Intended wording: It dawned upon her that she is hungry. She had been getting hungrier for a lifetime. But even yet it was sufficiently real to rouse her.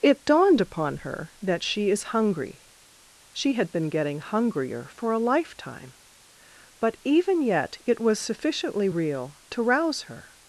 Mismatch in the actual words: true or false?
false